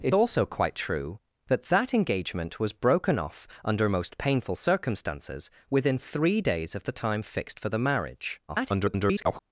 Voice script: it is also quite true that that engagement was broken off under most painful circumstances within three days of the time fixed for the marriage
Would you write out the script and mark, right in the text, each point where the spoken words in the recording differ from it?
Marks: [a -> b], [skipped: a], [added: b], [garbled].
it [skipped: is] also quite true that that engagement was broken off under most painful circumstances within three days of the time fixed for the marriage [garbled]